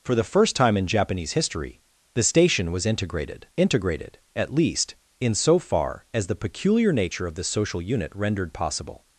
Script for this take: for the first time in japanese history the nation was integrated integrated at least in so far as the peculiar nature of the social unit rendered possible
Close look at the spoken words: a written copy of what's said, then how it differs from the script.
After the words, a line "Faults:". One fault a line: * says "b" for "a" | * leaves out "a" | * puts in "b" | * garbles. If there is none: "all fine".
for the first time in japanese history the station was integrated integrated at least in so far as the peculiar nature of the social unit rendered possible
Faults:
* says "station" for "nation"